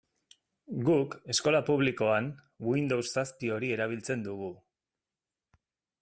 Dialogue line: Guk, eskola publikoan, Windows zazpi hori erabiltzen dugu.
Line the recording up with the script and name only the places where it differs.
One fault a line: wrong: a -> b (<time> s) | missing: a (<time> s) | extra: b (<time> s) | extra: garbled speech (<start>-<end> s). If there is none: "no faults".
no faults